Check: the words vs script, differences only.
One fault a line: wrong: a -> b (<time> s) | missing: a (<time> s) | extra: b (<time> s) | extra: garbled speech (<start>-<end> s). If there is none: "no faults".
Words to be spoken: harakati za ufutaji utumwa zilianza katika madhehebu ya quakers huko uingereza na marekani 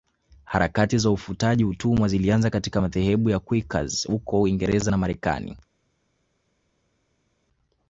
no faults